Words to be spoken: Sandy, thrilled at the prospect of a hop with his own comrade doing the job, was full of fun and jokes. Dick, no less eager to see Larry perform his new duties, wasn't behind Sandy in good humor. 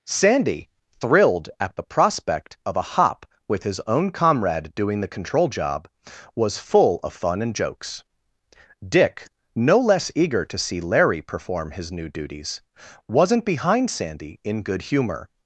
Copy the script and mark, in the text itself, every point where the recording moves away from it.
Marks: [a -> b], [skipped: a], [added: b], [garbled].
Sandy, thrilled at the prospect of a hop with his own comrade doing the [added: control] job, was full of fun and jokes. Dick, no less eager to see Larry perform his new duties, wasn't behind Sandy in good humor.